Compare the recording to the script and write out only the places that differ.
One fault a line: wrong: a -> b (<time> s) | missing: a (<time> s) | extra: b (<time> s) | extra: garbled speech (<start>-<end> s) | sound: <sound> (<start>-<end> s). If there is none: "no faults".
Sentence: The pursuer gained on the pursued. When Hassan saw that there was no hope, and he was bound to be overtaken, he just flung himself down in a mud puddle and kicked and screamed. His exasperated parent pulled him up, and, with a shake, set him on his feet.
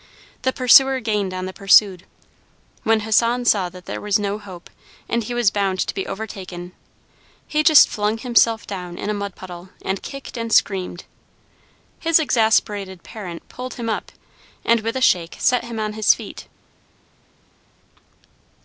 no faults